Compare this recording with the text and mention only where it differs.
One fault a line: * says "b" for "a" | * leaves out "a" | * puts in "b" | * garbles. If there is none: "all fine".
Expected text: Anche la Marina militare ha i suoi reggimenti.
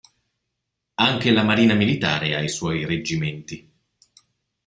all fine